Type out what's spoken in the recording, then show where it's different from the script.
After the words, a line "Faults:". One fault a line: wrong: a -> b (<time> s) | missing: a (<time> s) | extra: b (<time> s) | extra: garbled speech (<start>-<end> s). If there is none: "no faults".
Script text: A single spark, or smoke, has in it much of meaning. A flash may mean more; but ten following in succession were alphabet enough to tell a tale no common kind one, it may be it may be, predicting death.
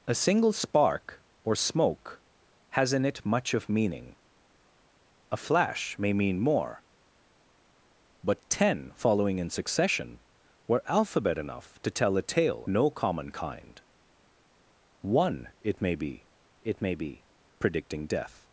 A single spark, or smoke, has in it much of meaning. A flash may mean more; but ten following in succession were alphabet enough to tell a tale no common kind one, it may be it may be, predicting death.
Faults:
no faults